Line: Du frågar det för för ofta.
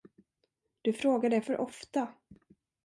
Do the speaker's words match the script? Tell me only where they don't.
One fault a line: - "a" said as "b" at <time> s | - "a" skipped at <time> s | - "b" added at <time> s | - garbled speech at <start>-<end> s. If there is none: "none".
- "för" skipped at 1.6 s